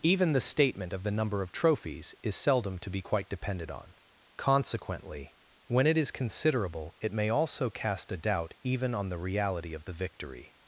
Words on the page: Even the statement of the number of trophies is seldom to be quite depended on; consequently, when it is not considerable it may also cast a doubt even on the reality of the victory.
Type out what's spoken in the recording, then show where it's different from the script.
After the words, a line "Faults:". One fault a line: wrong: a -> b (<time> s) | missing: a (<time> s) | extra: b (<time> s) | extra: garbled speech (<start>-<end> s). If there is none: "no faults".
Even the statement of the number of trophies is seldom to be quite depended on; consequently, when it is considerable it may also cast a doubt even on the reality of the victory.
Faults:
missing: not (6.1 s)